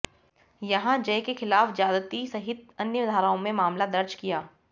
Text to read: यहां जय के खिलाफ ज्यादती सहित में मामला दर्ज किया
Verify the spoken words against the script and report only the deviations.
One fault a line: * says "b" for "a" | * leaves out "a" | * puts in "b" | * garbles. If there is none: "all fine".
* puts in "अन्य धाराओं"